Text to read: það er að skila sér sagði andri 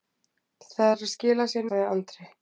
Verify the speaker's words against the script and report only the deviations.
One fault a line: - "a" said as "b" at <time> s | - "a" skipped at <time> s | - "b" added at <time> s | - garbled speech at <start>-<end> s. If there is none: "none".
none